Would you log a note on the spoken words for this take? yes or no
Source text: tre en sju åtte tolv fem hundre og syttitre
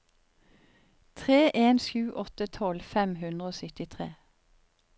no